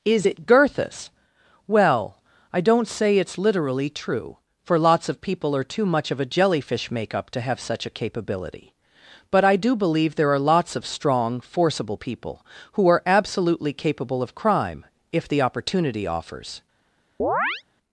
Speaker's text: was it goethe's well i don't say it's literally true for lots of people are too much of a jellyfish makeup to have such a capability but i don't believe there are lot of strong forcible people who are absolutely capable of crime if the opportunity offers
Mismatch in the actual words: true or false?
true